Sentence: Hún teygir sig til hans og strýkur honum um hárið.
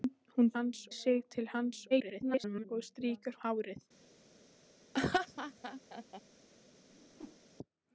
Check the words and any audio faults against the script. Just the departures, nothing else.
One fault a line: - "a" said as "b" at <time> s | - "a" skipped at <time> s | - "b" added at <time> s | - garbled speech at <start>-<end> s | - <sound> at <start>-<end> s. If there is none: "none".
- "teygir" said as "hans" at 0.5 s
- garbled speech at 1.9-2.6 s
- "honum" skipped at 3.4 s
- laugh at 4.9-6.2 s
- whoosh at 6.9-7.4 s